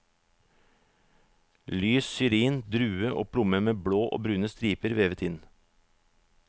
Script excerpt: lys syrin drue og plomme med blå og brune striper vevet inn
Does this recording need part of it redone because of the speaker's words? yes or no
no